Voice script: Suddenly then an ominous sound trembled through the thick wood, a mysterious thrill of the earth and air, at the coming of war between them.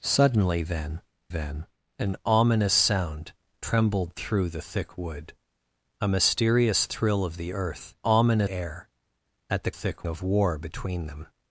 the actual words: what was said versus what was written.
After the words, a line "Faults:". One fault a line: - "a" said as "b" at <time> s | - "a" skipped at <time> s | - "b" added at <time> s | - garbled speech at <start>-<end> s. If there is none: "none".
Suddenly then then an ominous sound trembled through the thick wood, a mysterious thrill of the earth ominous air, at the thick of war between them.
Faults:
- "then" added at 1.3 s
- "and" said as "ominous" at 8.0 s
- "coming" said as "thick" at 9.7 s